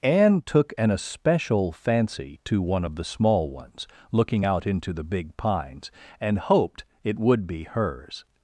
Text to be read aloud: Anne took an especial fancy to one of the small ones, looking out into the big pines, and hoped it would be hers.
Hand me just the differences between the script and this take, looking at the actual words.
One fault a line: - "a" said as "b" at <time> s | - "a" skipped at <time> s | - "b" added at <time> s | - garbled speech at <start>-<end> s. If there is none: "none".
none